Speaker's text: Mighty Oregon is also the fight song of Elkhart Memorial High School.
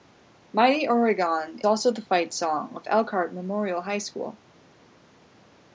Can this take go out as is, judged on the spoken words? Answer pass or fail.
fail